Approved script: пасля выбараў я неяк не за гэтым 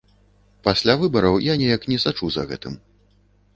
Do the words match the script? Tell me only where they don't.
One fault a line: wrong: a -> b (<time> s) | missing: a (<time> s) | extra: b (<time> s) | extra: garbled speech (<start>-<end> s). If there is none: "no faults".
extra: сачу (2.1 s)